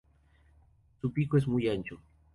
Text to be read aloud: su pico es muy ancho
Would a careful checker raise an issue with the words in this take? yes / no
no